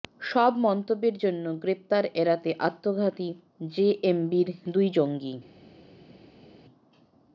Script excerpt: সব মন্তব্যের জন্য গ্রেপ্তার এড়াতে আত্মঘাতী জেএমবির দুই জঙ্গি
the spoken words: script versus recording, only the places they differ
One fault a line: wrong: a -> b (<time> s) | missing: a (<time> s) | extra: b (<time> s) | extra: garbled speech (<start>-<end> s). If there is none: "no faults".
no faults